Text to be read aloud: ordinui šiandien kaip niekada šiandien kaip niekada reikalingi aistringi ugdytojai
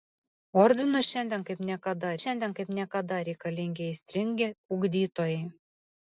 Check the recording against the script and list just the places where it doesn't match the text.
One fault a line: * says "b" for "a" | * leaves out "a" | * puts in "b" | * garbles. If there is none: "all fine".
all fine